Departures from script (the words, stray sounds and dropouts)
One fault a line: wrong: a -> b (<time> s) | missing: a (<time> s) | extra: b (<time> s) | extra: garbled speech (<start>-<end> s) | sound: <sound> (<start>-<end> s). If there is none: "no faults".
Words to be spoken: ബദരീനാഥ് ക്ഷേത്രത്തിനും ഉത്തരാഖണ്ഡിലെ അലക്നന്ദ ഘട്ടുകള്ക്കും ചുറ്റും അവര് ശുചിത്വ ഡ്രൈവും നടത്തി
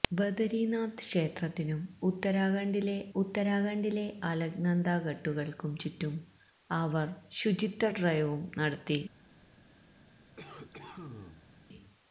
extra: ഉത്തരാഖണ്ഡിലെ (3.2 s)
sound: cough (10.4-11.5 s)